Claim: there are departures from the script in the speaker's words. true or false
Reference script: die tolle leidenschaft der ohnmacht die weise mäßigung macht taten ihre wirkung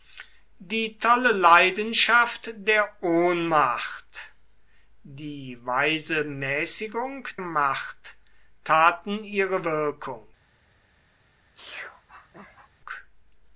false